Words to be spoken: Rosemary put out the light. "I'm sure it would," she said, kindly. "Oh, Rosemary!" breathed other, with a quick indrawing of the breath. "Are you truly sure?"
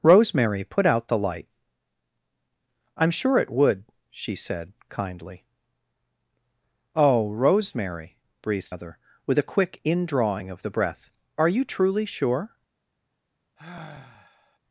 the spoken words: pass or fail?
pass